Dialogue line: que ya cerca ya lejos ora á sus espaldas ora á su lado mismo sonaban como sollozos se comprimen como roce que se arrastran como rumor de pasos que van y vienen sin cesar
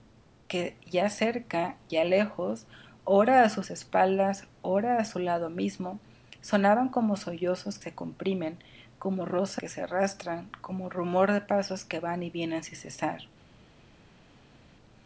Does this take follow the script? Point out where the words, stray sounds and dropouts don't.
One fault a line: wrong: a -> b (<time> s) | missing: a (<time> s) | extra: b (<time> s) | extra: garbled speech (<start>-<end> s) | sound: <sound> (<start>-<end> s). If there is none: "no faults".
no faults